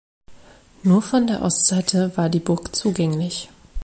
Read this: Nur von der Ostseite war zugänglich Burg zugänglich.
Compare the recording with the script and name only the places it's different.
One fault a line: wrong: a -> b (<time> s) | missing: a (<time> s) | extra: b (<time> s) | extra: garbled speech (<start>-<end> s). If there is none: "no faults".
wrong: zugänglich -> die (2.3 s)